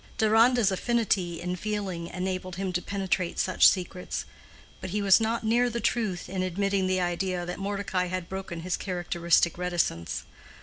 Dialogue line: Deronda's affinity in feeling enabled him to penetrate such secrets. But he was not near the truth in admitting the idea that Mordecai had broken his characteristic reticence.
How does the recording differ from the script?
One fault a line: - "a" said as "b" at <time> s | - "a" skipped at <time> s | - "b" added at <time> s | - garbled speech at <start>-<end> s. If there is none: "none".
none